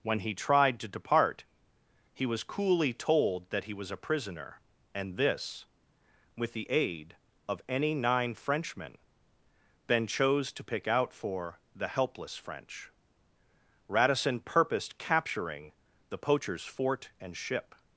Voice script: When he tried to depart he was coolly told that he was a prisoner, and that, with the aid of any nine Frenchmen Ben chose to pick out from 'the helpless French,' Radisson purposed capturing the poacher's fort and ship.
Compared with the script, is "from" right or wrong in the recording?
wrong